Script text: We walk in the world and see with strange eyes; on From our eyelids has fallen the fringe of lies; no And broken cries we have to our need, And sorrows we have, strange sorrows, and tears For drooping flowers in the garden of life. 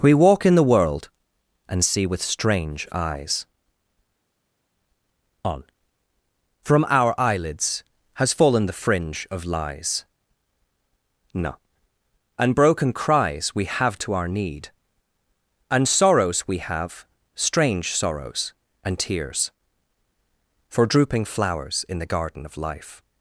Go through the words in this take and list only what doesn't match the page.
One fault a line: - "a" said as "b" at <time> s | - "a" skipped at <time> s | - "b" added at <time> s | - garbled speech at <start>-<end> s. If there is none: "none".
none